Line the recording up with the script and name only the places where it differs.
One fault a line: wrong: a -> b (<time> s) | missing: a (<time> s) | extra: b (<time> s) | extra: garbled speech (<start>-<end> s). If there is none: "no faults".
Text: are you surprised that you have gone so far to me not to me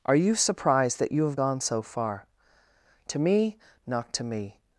no faults